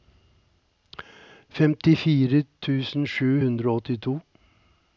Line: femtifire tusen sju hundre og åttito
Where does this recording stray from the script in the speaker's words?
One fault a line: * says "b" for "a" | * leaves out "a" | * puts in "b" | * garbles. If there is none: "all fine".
all fine